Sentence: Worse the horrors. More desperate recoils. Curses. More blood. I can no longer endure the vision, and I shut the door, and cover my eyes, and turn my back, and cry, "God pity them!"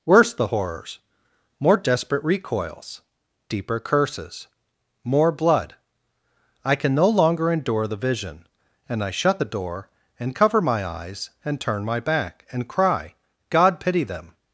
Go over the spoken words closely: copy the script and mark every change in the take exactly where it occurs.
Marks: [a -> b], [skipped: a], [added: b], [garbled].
Worse the horrors. More desperate recoils. [added: Deeper] Curses. More blood. I can no longer endure the vision, and I shut the door, and cover my eyes, and turn my back, and cry, "God pity them!"